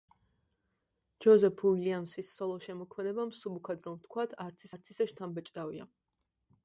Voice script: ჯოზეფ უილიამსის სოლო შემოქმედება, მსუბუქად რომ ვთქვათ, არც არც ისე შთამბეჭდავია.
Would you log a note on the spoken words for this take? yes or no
no